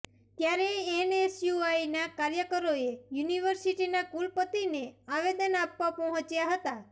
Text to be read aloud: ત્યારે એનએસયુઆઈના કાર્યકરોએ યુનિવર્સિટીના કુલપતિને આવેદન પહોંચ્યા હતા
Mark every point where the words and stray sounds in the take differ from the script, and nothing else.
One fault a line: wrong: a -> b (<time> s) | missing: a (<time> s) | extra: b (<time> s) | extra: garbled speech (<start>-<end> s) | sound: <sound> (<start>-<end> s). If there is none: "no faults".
extra: આપવા (5.6 s)